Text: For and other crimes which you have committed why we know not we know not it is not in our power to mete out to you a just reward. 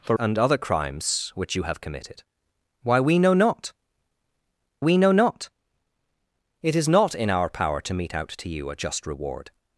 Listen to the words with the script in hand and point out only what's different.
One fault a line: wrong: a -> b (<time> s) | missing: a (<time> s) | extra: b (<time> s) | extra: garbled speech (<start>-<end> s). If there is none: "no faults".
no faults